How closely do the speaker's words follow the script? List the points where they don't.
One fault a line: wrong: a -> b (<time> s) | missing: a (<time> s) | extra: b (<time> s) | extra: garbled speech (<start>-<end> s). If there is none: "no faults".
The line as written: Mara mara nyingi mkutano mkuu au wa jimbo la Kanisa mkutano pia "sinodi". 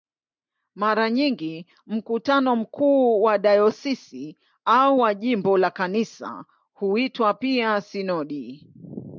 missing: mara (1.1 s)
extra: wa dayosisi (3.2 s)
wrong: mkutano -> huitwa (6.7 s)